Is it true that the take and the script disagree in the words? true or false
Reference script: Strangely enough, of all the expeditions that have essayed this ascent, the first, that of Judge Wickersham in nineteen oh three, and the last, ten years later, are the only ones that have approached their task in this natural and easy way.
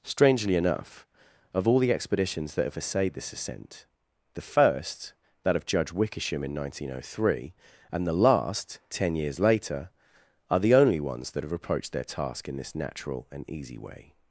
false